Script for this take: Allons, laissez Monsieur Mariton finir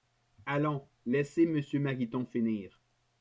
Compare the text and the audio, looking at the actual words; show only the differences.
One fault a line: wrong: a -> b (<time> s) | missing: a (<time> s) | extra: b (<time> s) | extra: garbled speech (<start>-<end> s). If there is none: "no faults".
no faults